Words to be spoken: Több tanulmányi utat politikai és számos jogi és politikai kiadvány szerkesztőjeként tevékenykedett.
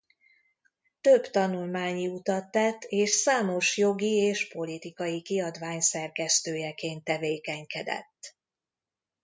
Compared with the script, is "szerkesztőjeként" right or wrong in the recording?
right